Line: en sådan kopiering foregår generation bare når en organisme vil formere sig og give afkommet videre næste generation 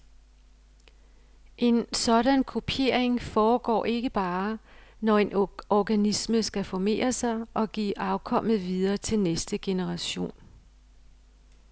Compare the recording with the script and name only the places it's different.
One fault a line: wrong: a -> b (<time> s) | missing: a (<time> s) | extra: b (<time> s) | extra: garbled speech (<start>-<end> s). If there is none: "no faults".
wrong: generation -> ikke (3.9 s)
wrong: vil -> skal (6.4 s)
extra: til (9.0 s)